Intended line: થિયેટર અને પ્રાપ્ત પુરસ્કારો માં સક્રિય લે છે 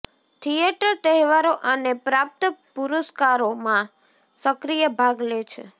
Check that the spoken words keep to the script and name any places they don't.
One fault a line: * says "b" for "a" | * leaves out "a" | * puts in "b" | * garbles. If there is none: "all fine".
* puts in "તહેવારો"
* puts in "ભાગ"